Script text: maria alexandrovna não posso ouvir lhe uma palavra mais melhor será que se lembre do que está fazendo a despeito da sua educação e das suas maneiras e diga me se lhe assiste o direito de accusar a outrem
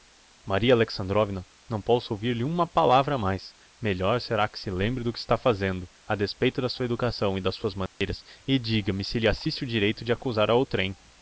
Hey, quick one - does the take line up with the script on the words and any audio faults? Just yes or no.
no